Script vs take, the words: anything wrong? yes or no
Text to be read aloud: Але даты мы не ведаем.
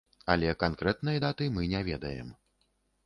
yes